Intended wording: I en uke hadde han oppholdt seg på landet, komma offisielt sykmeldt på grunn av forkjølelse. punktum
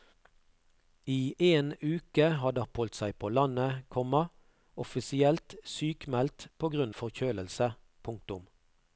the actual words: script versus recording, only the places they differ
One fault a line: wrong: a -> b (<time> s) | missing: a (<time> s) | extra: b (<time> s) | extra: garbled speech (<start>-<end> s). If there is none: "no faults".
missing: han (2.6 s)
missing: av (7.0 s)